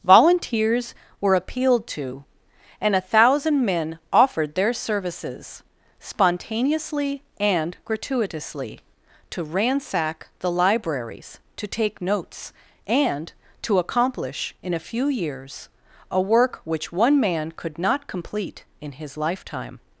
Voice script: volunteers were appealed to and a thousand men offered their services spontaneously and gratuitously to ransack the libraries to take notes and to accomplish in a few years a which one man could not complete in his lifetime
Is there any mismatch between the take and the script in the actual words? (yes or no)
yes